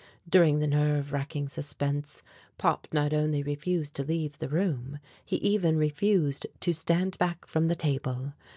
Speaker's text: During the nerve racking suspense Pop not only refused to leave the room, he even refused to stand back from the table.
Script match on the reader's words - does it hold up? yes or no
yes